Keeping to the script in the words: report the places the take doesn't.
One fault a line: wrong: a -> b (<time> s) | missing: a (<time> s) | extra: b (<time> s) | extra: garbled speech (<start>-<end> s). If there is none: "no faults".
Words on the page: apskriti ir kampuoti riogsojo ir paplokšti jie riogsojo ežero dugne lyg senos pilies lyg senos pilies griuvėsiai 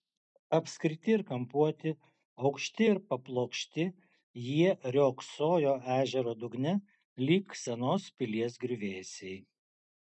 wrong: riogsojo -> aukšti (2.5 s)
missing: lyg senos pilies (8.6 s)